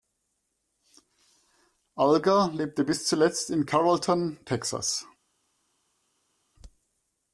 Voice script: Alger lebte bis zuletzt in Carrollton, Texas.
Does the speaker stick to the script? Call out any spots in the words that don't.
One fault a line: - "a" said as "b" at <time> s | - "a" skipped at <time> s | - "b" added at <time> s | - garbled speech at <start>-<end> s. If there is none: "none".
none